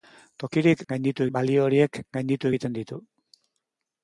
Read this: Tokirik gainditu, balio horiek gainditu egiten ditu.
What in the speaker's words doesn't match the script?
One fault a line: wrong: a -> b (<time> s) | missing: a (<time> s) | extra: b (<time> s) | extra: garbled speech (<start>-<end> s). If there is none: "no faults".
no faults